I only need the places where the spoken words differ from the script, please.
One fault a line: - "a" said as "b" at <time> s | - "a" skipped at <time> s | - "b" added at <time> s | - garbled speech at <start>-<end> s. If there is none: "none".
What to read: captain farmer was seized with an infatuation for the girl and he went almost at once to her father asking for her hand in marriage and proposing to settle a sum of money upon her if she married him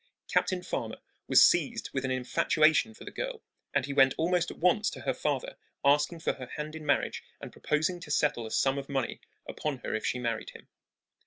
none